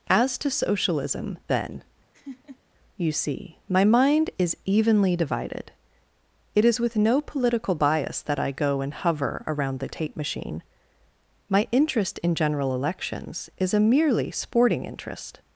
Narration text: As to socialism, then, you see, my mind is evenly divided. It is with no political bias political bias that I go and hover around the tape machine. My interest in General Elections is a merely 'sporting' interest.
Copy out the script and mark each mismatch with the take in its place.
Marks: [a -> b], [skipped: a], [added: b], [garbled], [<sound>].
As to socialism, then, [laugh] you see, my mind is evenly divided. It is with no political bias [skipped: political bias] that I go and hover around the tape machine. My interest in General Elections is a merely 'sporting' interest.